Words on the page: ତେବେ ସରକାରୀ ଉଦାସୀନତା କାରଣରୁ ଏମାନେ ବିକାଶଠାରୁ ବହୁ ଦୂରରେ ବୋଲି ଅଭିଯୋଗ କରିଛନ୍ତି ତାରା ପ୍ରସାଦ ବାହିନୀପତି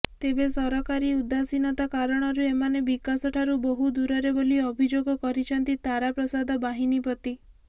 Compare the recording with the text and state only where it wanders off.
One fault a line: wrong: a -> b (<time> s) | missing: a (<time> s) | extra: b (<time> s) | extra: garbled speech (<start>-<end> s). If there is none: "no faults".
no faults